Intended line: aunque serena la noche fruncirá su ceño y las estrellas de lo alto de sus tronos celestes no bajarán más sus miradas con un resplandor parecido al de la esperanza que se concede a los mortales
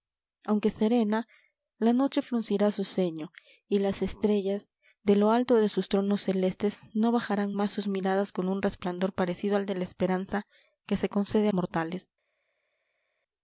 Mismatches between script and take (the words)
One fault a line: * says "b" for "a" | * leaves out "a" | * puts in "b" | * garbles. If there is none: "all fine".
* leaves out "los"